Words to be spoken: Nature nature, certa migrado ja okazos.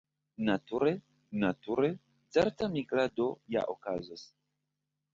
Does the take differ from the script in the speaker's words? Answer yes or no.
no